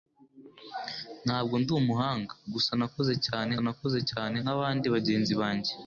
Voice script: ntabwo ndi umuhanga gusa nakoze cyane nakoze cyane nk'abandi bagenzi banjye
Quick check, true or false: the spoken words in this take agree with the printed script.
true